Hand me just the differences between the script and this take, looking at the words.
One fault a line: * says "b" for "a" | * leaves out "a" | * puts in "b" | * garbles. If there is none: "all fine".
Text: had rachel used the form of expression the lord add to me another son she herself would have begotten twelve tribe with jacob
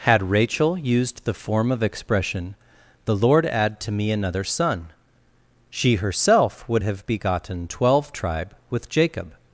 all fine